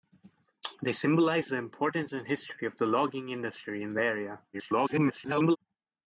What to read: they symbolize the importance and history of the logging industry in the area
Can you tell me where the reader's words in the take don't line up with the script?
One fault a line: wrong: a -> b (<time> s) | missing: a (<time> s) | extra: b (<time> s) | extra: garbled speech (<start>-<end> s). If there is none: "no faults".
extra: garbled speech (4.5-5.6 s)